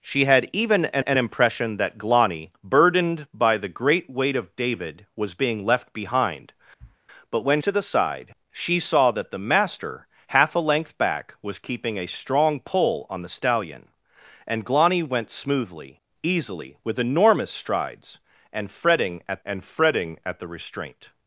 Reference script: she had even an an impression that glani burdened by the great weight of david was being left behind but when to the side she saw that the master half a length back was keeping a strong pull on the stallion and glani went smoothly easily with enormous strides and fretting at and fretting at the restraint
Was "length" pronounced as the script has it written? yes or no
yes